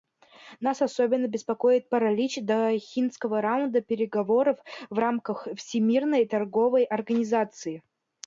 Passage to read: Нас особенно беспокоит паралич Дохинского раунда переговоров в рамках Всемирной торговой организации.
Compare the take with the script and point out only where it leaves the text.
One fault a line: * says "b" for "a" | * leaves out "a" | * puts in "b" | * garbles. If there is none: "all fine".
all fine